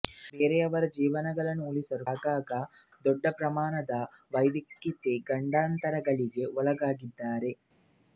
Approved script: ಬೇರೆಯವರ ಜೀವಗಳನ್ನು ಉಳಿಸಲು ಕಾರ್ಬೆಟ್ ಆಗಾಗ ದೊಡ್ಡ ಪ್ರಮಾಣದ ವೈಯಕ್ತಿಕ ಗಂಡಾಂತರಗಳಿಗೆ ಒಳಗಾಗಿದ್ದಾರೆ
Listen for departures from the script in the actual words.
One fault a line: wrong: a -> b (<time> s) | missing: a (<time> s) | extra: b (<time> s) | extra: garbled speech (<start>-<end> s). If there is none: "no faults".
missing: ಕಾರ್ಬೆಟ್ (2.0 s)